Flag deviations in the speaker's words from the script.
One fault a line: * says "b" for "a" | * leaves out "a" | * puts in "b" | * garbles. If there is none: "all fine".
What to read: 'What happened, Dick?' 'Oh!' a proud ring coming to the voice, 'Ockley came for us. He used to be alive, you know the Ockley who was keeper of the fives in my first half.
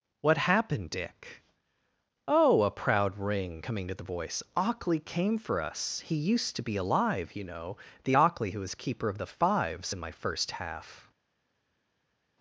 all fine